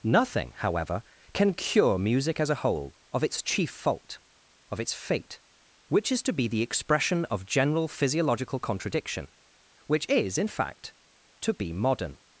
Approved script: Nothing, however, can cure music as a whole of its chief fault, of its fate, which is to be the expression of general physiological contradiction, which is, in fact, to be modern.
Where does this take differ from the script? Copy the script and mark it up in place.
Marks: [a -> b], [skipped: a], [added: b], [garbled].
Nothing, however, can cure music as a whole of its chief fault, of its fate, which is to be the expression of general physiological contradiction, which is, in fact, to be modern.